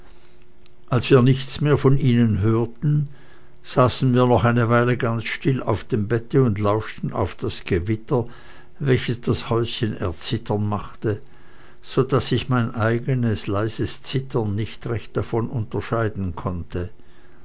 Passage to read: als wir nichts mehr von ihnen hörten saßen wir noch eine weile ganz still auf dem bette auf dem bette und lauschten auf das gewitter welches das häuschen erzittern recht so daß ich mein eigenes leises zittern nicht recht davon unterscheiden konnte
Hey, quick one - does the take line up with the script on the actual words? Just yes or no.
no